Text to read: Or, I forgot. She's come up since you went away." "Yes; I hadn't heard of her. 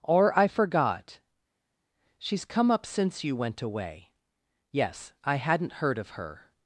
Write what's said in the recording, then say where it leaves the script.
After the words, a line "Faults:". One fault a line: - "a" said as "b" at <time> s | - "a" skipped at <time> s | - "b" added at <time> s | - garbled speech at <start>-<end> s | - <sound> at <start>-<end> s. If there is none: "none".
Or, I forgot. She's come up since you went away." "Yes; I hadn't heard of her.
Faults:
none